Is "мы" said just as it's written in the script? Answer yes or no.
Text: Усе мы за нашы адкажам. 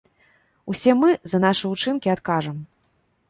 yes